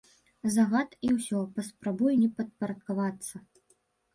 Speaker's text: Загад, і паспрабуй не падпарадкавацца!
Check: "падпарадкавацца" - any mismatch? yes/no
no